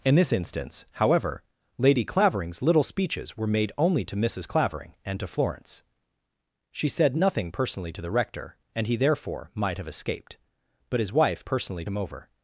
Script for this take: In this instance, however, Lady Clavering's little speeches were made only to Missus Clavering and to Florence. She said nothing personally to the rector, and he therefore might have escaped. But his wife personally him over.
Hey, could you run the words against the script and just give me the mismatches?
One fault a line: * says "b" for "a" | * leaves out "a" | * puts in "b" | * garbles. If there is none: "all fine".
all fine